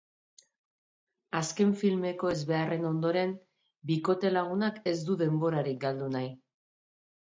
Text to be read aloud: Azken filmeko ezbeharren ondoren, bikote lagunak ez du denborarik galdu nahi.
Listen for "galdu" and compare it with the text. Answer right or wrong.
right